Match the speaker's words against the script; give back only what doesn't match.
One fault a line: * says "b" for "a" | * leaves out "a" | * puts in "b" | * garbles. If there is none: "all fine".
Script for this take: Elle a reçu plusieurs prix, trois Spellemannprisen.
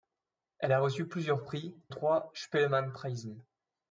all fine